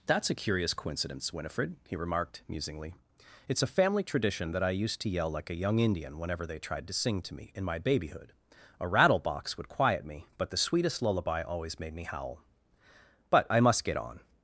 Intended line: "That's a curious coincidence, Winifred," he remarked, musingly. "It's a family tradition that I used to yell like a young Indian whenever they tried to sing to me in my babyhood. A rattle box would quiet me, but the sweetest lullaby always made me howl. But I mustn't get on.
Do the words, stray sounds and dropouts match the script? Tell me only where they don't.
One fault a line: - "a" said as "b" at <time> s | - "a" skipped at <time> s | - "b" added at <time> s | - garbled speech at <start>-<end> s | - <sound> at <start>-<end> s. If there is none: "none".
- "mustn't" said as "must" at 13.6 s